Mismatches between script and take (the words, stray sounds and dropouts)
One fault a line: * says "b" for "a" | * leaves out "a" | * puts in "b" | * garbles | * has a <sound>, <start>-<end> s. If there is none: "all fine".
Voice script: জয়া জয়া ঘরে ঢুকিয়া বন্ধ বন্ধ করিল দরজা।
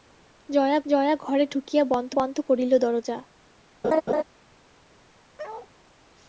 * has a laugh, 3.8-4.2 s
* has a bark, 5.4-5.7 s